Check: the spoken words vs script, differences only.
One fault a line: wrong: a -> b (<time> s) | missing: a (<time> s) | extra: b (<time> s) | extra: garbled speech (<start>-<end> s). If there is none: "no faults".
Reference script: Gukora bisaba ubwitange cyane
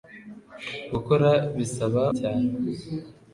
missing: ubwitange (2.0 s)